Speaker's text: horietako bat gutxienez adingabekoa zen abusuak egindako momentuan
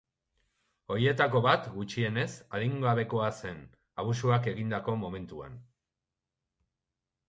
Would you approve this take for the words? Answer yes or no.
yes